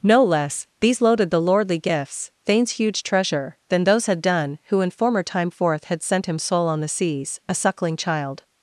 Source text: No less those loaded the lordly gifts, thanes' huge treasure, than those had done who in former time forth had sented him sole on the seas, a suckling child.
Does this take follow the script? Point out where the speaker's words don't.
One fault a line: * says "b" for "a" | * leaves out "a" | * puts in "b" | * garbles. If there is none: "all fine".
* says "these" for "those"
* says "sent" for "sented"